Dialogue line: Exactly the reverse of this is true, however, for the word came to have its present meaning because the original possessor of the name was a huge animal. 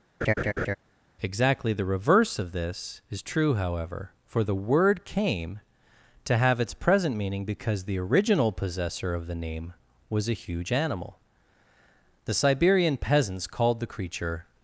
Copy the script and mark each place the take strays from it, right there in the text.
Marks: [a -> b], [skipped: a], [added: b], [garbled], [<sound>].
[laugh] Exactly the reverse of this is true, however, for the word came to have its present meaning because the original possessor of the name was a huge animal. [added: The Siberian peasants called the creature]